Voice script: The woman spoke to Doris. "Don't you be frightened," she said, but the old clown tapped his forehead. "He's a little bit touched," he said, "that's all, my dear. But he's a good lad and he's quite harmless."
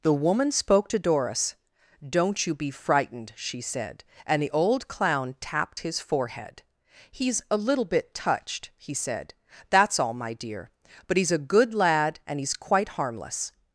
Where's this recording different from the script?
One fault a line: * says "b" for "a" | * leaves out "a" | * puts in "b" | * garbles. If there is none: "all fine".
* says "and" for "but"